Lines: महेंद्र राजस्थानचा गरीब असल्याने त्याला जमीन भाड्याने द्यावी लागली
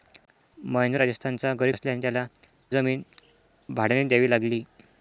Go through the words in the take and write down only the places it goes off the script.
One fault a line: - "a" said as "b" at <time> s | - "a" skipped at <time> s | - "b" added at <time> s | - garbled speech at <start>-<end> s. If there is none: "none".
none